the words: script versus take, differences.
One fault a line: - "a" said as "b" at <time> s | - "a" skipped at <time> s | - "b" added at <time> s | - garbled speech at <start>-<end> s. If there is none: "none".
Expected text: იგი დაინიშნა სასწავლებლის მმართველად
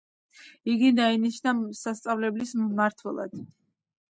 none